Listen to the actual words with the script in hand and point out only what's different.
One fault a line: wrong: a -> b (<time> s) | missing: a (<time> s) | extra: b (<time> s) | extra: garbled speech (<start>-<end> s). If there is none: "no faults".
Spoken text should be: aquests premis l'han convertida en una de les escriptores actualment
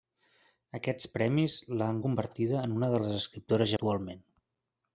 no faults